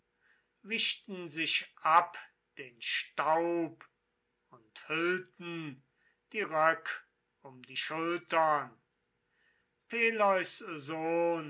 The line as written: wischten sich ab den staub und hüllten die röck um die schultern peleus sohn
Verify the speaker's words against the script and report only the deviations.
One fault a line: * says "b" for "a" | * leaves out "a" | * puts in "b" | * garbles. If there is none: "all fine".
all fine